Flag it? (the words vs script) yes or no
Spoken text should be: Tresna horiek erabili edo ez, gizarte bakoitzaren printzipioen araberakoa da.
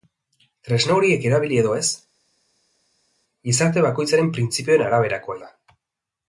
no